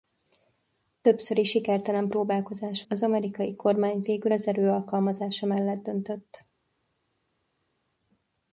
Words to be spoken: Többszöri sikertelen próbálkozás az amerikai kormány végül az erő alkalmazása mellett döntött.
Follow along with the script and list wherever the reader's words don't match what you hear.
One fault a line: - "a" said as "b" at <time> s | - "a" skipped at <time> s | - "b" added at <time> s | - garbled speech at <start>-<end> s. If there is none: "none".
none